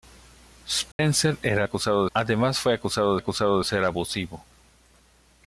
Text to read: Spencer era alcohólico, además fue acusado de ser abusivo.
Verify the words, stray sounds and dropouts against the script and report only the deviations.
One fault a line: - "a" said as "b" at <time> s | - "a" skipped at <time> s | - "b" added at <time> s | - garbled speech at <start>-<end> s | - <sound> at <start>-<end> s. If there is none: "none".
- dropout at 0.9-1.0 s
- "alcohólico" said as "acusado" at 1.6 s
- "acusado" added at 3.2 s